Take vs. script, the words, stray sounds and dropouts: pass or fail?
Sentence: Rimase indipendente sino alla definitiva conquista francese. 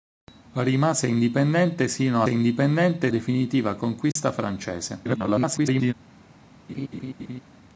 fail